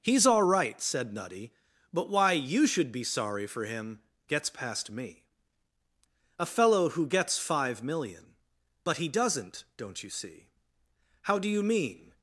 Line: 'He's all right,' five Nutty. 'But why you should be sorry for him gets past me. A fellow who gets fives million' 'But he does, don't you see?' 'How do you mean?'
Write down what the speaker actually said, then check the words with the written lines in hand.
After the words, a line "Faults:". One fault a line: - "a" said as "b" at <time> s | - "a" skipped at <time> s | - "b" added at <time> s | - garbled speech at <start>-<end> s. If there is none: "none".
'He's all right,' said Nutty. 'But why you should be sorry for him gets past me. A fellow who gets five million' 'But he doesn't, don't you see?' 'How do you mean?'
Faults:
- "five" said as "said" at 0.8 s
- "fives" said as "five" at 7.4 s
- "does" said as "doesn't" at 9.1 s